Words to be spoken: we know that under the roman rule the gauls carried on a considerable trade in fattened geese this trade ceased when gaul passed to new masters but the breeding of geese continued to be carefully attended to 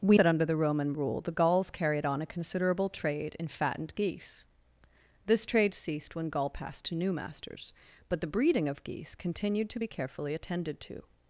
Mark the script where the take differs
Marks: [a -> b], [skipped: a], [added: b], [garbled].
we [skipped: know] that under the roman rule the gauls carried on a considerable trade in fattened geese this trade ceased when gaul passed to new masters but the breeding of geese continued to be carefully attended to